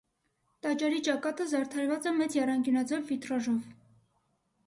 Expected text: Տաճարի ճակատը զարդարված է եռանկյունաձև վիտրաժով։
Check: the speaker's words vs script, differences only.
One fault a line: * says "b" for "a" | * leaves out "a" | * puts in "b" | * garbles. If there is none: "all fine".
* puts in "մեծ"